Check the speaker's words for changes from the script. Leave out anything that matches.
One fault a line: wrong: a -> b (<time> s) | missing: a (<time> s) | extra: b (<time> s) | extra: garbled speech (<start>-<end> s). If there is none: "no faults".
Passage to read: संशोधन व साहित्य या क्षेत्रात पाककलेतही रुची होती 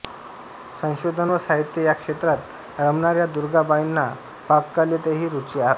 extra: रमणाऱ्या दुर्गाबाईंना (2.8 s)